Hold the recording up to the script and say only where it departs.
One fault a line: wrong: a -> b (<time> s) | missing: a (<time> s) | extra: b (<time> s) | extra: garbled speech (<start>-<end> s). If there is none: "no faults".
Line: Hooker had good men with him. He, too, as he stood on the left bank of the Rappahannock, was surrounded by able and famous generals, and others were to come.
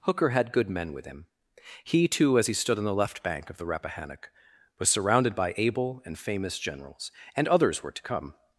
no faults